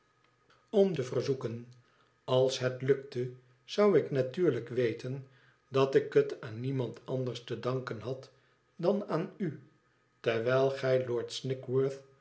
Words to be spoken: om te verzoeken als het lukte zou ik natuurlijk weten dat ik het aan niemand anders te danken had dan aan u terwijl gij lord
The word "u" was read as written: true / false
true